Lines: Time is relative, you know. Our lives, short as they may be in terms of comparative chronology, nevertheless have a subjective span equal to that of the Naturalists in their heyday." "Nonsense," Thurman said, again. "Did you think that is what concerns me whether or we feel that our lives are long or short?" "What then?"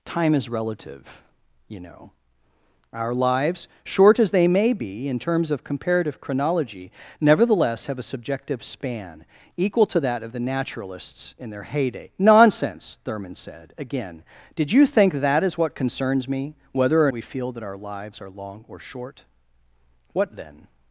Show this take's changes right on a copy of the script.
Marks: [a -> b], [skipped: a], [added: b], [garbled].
Time is relative, you know. Our lives, short as they may be in terms of comparative chronology, nevertheless have a subjective span equal to that of the Naturalists in their heyday." "Nonsense," Thurman said, again. "Did you think that is what concerns me whether or we feel that our lives are long or short?" "What then?"